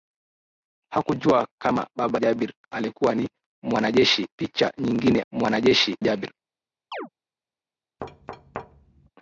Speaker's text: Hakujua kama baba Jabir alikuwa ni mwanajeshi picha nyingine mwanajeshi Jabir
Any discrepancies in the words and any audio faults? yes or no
yes